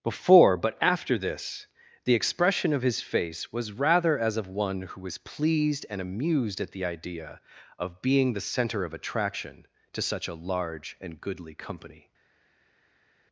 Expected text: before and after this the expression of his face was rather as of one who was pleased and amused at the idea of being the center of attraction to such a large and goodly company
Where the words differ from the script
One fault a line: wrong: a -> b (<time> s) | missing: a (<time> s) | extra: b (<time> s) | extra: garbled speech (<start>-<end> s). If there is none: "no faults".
wrong: and -> but (0.6 s)